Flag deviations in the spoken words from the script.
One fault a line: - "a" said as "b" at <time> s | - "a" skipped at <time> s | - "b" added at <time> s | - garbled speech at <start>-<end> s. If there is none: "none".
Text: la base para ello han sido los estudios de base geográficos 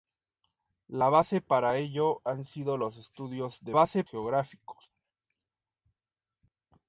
none